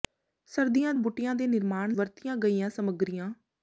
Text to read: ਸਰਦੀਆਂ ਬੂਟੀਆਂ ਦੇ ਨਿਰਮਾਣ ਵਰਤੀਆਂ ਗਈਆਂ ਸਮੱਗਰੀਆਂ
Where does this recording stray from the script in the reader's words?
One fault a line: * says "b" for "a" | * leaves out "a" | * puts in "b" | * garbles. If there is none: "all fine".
all fine